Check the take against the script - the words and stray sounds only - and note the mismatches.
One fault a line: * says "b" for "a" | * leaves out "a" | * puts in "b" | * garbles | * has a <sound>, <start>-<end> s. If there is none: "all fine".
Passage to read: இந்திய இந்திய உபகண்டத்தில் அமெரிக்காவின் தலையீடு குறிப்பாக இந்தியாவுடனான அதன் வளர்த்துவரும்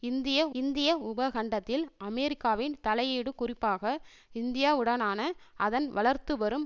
all fine